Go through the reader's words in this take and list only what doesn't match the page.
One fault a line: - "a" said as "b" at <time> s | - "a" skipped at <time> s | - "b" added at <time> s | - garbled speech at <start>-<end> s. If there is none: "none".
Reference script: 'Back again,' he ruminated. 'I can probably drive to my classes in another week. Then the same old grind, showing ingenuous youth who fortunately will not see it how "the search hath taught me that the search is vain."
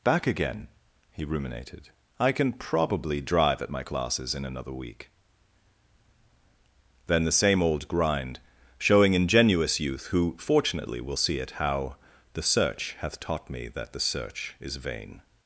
- "to" said as "at" at 3.6 s
- "not" skipped at 11.2 s